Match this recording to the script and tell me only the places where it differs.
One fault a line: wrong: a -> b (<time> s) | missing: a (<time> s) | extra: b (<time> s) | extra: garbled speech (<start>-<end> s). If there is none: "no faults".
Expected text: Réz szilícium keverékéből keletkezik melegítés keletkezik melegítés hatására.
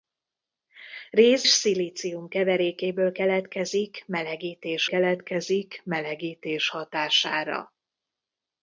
no faults